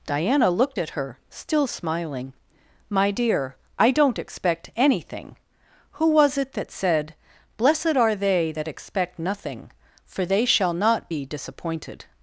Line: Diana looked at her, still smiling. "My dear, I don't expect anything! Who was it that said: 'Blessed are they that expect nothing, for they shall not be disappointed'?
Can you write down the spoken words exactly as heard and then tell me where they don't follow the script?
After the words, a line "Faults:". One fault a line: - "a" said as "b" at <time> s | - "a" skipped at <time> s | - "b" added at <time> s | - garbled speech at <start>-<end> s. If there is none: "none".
Diana looked at her, still smiling. "My dear, I don't expect anything! Who was it that said: 'Blessed are they that expect nothing, for they shall not be disappointed'?
Faults:
none